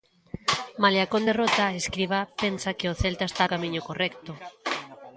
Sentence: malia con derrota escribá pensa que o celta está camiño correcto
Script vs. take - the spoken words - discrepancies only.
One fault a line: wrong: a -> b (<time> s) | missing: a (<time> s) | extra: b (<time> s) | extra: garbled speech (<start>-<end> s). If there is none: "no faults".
no faults